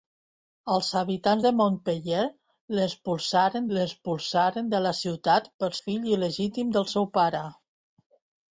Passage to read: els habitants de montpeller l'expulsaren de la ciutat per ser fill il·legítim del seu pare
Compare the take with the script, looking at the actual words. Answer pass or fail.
fail